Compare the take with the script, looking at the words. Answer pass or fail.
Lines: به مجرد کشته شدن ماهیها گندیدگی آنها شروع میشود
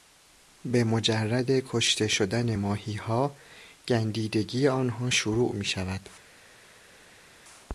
pass